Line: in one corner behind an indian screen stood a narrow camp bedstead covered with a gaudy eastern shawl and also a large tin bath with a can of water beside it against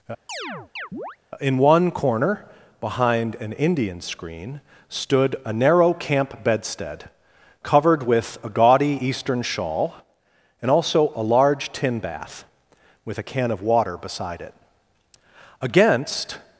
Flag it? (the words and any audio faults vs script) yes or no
yes